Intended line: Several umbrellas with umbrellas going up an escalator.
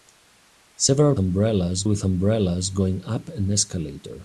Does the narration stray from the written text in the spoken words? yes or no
no